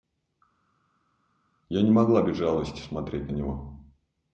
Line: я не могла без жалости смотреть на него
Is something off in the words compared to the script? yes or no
no